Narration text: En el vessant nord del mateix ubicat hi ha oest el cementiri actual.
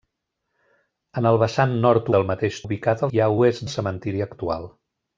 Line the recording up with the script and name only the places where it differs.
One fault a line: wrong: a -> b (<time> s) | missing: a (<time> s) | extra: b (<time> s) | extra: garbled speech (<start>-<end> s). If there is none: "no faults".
no faults